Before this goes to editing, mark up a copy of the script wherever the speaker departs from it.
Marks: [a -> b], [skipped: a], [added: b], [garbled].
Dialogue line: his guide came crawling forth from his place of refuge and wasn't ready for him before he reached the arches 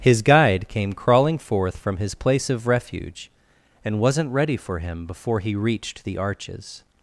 his guide came crawling forth from his place of refuge and wasn't ready for him before he reached the arches